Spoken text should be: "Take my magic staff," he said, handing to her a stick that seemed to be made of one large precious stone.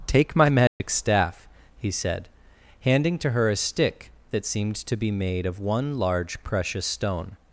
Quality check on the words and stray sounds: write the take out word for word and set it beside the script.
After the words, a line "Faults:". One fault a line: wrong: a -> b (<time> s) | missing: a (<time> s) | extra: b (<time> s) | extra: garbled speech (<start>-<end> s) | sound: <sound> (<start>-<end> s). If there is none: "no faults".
"Take my magic staff," he said, handing to her a stick that seemed to be made of one large precious stone.
Faults:
sound: dropout (0.7-0.8 s)